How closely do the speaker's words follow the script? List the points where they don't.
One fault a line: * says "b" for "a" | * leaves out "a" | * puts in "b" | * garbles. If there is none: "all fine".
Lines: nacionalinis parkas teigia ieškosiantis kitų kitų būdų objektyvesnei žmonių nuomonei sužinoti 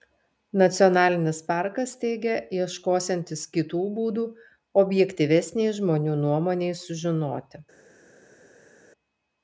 * leaves out "kitų"